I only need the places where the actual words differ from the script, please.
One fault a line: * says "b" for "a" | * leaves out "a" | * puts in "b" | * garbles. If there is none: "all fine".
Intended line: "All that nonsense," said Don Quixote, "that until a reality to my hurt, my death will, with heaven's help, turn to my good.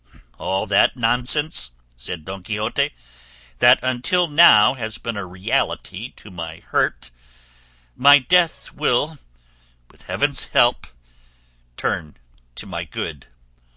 * puts in "now has been"